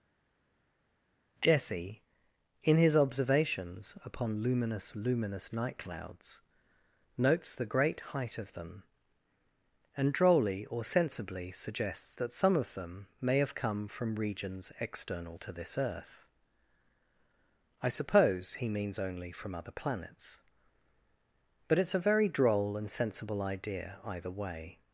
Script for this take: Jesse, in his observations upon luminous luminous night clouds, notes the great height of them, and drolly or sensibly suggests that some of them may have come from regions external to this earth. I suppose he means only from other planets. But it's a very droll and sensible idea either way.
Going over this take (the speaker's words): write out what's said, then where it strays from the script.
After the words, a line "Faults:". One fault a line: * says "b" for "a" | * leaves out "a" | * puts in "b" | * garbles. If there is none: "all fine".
Jesse, in his observations upon luminous luminous night clouds, notes the great height of them, and drolly or sensibly suggests that some of them may have come from regions external to this earth. I suppose he means only from other planets. But it's a very droll and sensible idea either way.
Faults:
all fine